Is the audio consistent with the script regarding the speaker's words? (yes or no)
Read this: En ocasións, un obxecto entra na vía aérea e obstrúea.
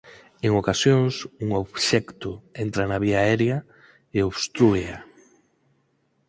yes